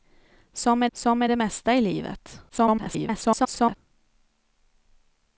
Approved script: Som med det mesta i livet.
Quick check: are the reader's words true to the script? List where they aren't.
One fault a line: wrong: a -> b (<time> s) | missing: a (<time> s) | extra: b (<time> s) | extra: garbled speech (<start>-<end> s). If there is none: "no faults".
extra: som med (0.9 s)
extra: garbled speech (2.5-3.8 s)